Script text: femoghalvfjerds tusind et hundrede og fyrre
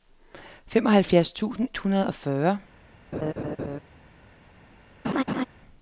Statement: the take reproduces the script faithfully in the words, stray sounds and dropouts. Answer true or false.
false